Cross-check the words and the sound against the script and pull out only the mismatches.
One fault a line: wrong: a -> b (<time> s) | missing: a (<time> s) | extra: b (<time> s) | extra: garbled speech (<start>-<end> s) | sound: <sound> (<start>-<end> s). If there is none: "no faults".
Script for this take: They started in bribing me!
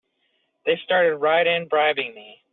extra: right (1.2 s)